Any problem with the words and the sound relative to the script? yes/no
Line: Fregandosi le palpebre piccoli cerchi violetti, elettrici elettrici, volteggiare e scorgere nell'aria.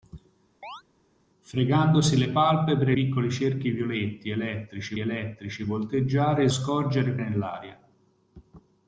yes